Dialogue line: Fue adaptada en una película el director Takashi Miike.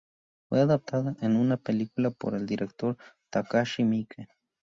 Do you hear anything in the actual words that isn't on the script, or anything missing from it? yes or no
yes